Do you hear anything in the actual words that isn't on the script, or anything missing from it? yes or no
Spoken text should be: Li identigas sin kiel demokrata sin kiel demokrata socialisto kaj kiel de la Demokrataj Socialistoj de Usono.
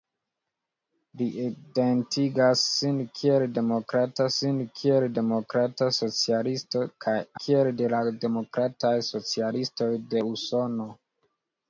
no